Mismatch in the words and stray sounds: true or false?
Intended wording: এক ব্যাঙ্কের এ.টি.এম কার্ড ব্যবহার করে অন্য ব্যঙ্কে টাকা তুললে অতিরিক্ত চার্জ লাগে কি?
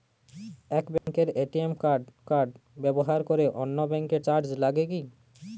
true